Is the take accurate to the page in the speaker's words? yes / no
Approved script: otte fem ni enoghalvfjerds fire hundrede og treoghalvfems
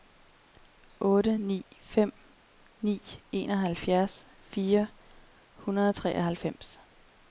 no